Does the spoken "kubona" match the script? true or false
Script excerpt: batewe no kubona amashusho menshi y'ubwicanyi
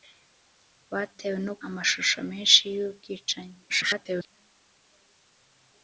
false